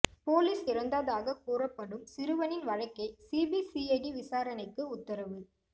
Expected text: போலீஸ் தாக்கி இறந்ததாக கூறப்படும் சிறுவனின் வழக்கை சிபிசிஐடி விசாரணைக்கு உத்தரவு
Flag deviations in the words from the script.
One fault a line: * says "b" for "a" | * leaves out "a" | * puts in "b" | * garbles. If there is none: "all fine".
* leaves out "தாக்கி"